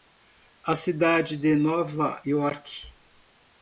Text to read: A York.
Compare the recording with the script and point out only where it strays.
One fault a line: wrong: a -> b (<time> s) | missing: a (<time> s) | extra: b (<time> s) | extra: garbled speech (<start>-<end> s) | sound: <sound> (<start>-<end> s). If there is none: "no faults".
extra: cidade de Nova (0.8 s)